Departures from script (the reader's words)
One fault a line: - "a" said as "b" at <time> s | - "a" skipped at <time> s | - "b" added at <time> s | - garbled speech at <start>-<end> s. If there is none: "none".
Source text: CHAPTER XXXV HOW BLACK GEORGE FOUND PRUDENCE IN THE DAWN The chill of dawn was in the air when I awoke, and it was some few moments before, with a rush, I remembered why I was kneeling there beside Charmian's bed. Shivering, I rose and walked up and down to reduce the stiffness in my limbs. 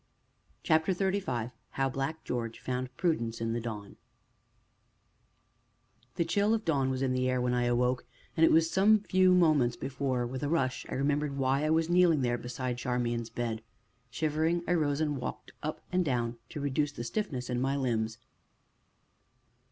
none